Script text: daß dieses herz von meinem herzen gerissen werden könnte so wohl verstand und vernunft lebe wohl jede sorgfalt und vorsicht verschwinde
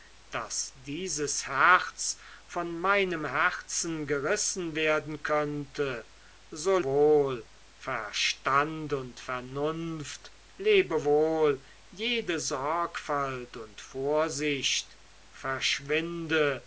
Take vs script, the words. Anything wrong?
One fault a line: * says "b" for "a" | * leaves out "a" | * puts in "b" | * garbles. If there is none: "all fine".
all fine